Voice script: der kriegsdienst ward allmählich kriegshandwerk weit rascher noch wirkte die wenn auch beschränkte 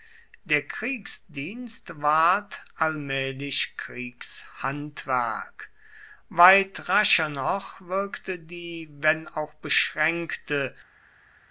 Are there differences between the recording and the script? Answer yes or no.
no